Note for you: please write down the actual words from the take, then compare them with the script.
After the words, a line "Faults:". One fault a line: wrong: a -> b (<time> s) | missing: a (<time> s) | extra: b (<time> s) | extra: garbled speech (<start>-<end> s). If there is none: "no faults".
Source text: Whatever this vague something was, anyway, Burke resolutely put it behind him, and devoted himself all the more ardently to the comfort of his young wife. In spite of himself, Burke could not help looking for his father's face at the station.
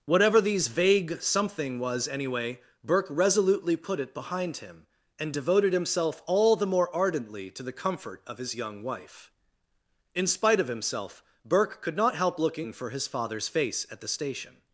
Whatever these vague something was, anyway, Burke resolutely put it behind him, and devoted himself all the more ardently to the comfort of his young wife. In spite of himself, Burke could not help looking for his father's face at the station.
Faults:
wrong: this -> these (0.4 s)